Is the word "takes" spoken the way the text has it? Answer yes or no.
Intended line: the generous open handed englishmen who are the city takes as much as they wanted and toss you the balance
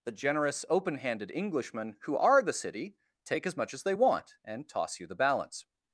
no